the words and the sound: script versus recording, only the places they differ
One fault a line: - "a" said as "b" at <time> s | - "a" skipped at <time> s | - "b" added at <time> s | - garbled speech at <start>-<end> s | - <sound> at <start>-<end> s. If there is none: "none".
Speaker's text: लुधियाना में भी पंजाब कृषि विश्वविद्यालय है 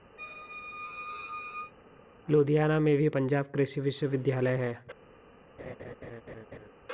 - squeak at 0.2-1.7 s
- laugh at 5.6-6.7 s